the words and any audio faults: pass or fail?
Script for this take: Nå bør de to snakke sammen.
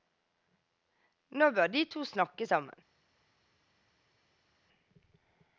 pass